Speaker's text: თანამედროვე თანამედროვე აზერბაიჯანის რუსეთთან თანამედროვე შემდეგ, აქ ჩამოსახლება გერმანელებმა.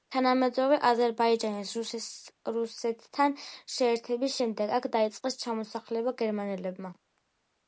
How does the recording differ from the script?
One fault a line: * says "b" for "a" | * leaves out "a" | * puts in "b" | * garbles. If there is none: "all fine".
* leaves out "თანამედროვე"
* says "შეერთების" for "თანამედროვე"
* puts in "დაიწყეს"